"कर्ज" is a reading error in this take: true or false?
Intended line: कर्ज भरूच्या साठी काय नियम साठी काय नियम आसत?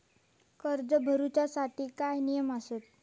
false